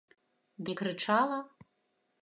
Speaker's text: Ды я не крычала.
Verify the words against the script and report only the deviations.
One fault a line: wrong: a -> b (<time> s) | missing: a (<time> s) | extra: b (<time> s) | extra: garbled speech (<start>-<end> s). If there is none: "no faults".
missing: я (0.7 s)